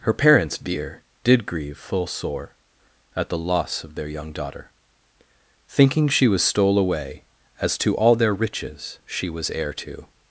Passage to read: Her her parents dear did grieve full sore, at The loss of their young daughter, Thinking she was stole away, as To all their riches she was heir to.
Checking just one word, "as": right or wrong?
right